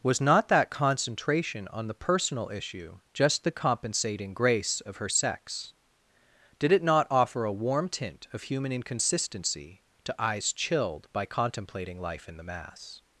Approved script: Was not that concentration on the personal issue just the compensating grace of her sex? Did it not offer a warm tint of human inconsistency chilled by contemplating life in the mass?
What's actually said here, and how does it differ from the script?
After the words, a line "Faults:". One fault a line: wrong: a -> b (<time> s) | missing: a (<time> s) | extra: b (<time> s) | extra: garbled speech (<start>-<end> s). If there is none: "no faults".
Was not that concentration on the personal issue just the compensating grace of her sex? Did it not offer a warm tint of human inconsistency to eyes chilled by contemplating life in the mass?
Faults:
extra: to eyes (10.0 s)